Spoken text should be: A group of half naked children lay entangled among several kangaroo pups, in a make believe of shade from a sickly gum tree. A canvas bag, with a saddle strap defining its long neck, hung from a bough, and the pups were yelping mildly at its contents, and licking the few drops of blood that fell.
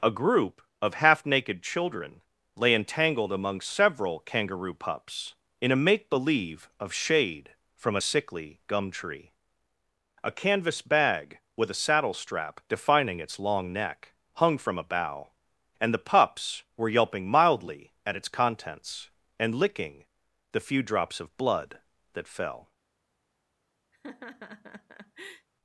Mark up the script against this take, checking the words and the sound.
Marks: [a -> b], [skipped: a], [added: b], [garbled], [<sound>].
A group of half naked children lay entangled among several kangaroo pups, in a make believe of shade from a sickly gum tree. A canvas bag, with a saddle strap defining its long neck, hung from a bough, and the pups were yelping mildly at its contents, and licking the few drops of blood that fell. [laugh]